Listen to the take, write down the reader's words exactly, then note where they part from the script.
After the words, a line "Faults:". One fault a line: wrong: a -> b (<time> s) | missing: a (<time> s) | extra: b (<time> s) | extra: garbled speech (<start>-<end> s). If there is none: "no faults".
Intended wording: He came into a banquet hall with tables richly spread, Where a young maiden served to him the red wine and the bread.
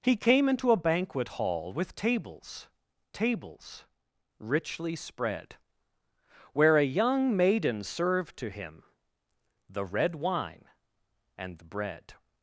He came into a banquet hall with tables tables richly spread, Where a young maiden served to him the red wine and the bread.
Faults:
extra: tables (3.1 s)